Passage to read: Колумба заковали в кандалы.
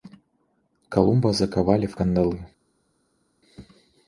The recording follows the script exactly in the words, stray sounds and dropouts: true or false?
true